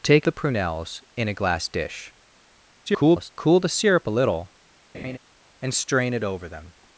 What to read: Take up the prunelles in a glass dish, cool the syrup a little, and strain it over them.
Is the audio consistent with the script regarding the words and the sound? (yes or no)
no